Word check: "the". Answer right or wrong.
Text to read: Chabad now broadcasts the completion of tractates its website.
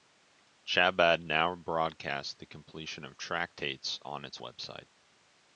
right